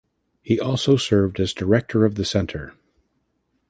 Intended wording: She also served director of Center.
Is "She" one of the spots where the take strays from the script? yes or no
yes